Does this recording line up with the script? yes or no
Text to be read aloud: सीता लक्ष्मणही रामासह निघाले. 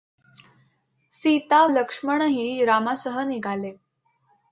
yes